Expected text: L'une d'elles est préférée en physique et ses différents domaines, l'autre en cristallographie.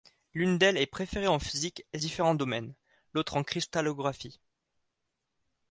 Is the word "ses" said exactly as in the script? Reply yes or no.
no